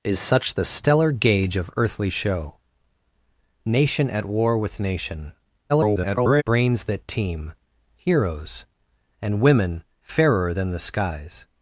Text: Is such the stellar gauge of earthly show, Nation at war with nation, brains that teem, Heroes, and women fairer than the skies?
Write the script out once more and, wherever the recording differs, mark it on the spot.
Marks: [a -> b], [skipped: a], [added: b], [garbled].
Is such the stellar gauge of earthly show, Nation at war with nation, [garbled] brains that teem, Heroes, and women fairer than the skies?